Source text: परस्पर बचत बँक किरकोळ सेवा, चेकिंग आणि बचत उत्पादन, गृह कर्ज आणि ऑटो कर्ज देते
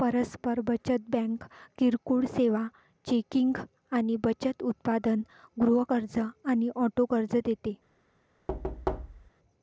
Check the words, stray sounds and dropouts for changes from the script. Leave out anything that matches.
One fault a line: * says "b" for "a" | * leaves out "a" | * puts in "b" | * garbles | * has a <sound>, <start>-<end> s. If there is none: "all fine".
* has a thud, 8.5-9.3 s